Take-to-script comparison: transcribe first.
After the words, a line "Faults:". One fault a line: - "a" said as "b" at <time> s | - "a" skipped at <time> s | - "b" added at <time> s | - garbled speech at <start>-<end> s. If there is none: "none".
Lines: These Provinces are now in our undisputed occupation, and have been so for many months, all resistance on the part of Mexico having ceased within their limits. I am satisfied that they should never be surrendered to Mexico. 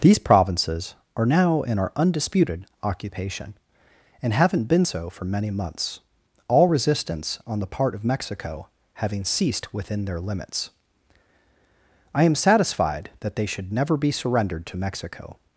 These Provinces are now in our undisputed occupation, and haven't been so for many months, all resistance on the part of Mexico having ceased within their limits. I am satisfied that they should never be surrendered to Mexico.
Faults:
- "have" said as "haven't" at 4.3 s